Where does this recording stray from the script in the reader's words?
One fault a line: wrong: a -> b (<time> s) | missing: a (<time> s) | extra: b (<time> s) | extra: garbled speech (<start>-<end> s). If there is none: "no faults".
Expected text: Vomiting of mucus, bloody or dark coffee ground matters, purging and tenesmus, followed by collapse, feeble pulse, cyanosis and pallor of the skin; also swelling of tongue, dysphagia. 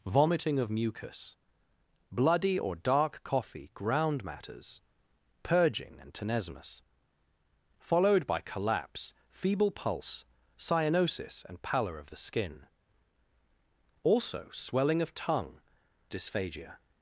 no faults